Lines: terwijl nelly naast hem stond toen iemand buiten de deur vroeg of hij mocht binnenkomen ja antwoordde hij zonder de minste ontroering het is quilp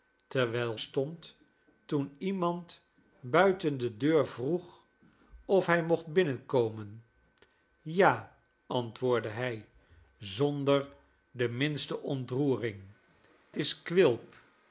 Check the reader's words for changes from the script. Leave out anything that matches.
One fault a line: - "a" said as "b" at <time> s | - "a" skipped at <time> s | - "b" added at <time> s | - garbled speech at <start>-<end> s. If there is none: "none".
- "nelly naast hem" skipped at 0.8 s
- "het" skipped at 12.8 s